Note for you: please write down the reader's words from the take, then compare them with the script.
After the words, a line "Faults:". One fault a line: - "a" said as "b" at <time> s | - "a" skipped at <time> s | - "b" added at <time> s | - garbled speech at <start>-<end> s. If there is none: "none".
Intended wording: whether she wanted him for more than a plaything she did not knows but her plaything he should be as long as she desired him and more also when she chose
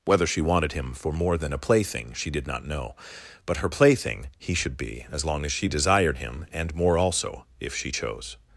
whether she wanted him for more than a plaything she did not know but her plaything he should be as long as she desired him and more also if she chose
Faults:
- "knows" said as "know" at 2.6 s
- "when" said as "if" at 7.6 s